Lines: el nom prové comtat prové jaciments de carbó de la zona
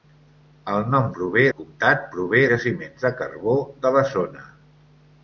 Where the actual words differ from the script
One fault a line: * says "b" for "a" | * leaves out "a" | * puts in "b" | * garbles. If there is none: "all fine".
all fine